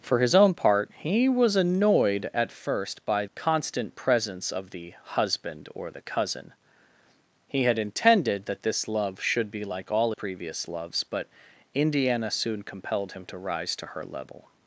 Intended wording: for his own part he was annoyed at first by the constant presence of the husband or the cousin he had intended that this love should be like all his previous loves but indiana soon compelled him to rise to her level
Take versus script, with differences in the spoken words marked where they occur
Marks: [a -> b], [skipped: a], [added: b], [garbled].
for his own part he was annoyed at first by [skipped: the] constant presence of the husband or the cousin he had intended that this love should be like all [skipped: his] previous loves but indiana soon compelled him to rise to her level